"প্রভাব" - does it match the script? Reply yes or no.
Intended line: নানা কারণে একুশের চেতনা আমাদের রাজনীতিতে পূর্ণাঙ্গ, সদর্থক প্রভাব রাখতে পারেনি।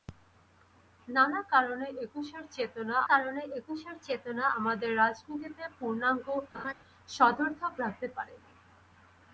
no